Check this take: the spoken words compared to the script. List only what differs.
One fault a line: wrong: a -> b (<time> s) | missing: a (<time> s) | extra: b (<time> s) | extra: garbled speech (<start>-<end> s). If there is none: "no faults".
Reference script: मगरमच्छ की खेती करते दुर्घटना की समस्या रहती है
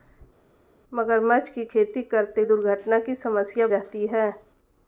no faults